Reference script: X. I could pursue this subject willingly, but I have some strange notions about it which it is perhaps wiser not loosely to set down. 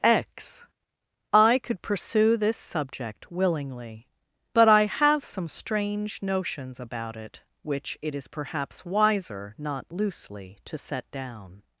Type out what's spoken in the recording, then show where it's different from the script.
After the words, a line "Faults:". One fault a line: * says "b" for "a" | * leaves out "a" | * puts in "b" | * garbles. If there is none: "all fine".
X. I could pursue this subject willingly, but I have some strange notions about it which it is perhaps wiser not loosely to set down.
Faults:
all fine